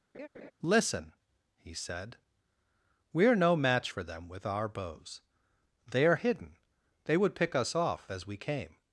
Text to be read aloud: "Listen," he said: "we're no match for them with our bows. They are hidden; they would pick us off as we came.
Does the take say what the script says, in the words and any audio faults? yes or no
no